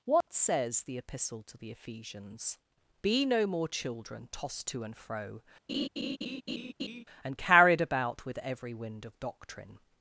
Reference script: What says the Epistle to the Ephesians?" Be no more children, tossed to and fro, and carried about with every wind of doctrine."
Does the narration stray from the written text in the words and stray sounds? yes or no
yes